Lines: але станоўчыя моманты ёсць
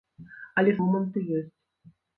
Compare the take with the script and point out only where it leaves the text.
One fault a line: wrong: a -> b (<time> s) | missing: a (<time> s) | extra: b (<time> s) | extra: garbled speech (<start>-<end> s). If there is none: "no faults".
missing: станоўчыя (0.7 s)